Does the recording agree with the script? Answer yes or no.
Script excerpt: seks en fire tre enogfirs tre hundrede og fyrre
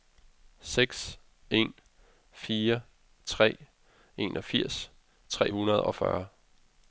yes